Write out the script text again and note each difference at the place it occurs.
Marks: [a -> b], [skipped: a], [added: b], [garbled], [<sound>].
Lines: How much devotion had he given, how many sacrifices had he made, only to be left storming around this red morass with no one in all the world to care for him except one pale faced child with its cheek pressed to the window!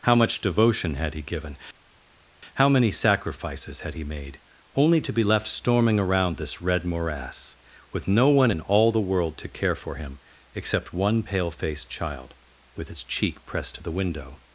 How much devotion had he given, how many sacrifices had he made, only to be left storming around this red morass with no one in all the world to care for him except one pale faced child with its cheek pressed to the window!